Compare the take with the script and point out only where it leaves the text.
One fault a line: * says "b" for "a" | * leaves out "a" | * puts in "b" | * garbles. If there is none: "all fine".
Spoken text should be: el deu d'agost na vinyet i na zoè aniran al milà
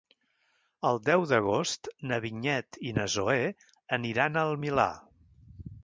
all fine